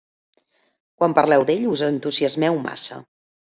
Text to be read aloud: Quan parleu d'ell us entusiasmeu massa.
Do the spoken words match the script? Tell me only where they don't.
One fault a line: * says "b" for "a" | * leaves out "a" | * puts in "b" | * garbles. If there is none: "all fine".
all fine